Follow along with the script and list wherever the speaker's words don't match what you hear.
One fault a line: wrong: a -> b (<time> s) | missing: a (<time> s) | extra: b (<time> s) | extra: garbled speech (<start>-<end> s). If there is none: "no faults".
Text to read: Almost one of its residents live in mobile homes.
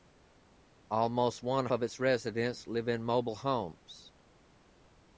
no faults